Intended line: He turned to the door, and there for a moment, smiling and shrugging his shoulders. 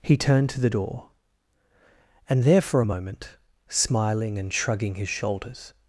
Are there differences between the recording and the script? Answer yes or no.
no